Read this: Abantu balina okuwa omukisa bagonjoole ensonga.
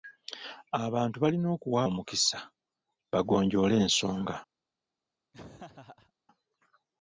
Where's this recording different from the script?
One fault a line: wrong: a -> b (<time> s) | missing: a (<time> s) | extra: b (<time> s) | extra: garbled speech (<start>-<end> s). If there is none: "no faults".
no faults